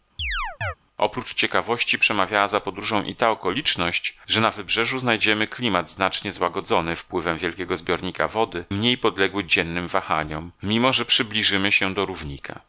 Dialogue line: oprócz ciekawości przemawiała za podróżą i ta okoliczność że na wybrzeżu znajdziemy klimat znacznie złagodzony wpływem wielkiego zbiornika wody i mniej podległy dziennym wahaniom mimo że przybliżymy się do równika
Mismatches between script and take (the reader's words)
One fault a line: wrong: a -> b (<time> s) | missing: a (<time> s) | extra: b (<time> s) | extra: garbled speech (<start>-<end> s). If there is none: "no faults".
missing: i (8.6 s)